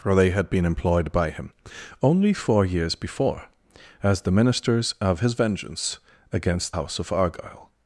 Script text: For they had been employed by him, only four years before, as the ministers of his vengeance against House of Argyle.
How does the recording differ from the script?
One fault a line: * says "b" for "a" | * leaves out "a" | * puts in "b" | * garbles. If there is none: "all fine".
all fine